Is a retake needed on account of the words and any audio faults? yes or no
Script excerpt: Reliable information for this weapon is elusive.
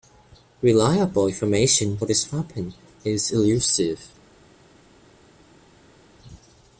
yes